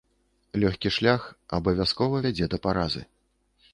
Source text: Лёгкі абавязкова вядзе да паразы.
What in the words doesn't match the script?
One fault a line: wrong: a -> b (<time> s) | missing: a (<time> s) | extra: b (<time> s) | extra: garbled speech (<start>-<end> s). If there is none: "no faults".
extra: шлях (0.9 s)